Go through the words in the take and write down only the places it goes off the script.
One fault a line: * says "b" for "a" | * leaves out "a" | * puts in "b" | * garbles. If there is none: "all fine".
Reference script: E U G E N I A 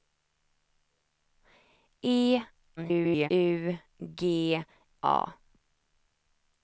* garbles
* leaves out "E N I"